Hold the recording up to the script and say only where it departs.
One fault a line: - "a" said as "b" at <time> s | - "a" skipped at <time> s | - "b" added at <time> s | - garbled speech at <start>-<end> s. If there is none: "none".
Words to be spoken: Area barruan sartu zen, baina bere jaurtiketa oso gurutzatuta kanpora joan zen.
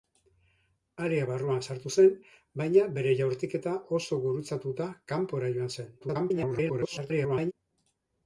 - garbled speech at 6.0-7.5 s